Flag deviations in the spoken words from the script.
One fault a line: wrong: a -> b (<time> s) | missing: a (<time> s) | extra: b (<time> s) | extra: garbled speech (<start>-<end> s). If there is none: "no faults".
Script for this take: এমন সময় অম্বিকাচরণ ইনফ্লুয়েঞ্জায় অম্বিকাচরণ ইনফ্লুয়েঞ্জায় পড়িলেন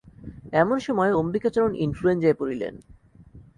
missing: অম্বিকাচরণ ইনফ্লুয়েঞ্জায় (2.4 s)